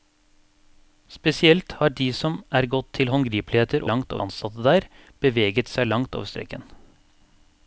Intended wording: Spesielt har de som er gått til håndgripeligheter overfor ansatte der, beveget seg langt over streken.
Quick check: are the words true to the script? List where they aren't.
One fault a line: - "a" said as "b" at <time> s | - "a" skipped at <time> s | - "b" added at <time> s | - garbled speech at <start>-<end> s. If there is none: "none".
- "overfor" said as "langt" at 3.9 s